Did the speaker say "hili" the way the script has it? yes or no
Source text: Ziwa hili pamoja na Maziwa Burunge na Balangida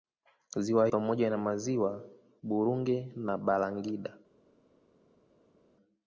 no